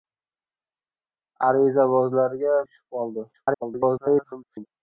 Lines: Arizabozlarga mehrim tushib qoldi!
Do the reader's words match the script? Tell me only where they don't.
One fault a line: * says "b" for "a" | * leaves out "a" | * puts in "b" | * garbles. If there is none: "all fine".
* leaves out "mehrim"
* garbles